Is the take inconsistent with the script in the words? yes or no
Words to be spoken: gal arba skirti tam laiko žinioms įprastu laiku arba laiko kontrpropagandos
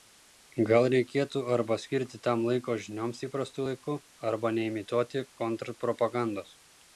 yes